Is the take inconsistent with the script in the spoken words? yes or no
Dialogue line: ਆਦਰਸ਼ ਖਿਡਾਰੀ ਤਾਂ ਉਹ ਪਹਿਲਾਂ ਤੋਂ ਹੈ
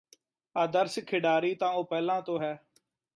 no